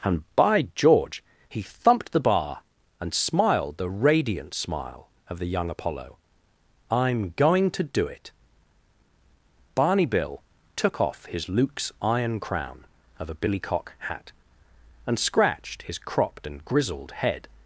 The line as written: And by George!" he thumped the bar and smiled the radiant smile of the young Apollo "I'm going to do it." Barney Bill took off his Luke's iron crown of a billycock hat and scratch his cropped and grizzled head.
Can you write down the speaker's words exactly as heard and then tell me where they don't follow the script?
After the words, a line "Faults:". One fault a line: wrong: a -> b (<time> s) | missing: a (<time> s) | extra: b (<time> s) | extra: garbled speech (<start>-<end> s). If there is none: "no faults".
And by George!" he thumped the bar and smiled the radiant smile of the young Apollo "I'm going to do it." Barney Bill took off his Luke's iron crown of a billycock hat and scratched his cropped and grizzled head.
Faults:
wrong: scratch -> scratched (15.2 s)